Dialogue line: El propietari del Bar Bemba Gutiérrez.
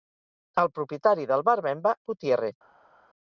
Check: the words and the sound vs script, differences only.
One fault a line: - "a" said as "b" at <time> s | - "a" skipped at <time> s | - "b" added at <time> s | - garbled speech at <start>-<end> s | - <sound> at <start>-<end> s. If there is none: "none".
none